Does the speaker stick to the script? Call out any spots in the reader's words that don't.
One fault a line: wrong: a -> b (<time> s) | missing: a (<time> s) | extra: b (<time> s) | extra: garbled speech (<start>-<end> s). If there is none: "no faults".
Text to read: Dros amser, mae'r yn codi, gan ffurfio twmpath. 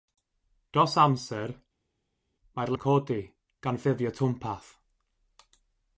no faults